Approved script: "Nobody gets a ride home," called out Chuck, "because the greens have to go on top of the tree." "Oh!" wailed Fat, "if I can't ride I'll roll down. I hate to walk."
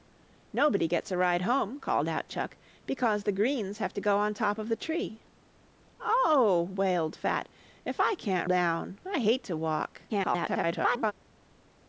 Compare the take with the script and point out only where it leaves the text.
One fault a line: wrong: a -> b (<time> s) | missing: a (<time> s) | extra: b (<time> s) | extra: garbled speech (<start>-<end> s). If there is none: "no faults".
missing: ride I'll roll (8.5 s)
extra: garbled speech (10.1-11.1 s)